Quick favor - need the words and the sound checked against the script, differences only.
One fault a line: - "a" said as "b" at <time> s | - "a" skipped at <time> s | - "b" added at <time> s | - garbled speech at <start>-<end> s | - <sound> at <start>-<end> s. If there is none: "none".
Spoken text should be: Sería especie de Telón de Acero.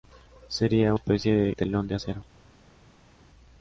none